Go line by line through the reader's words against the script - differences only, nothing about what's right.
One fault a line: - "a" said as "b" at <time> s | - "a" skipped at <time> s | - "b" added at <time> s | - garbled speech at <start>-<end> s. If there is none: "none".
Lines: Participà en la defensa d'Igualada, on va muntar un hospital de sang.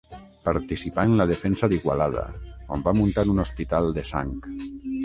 none